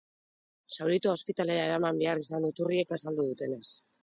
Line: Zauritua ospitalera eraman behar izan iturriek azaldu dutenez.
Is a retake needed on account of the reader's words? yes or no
no